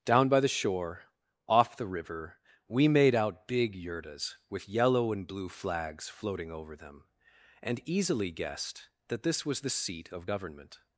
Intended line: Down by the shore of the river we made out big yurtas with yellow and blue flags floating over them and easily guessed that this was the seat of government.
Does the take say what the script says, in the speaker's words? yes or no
no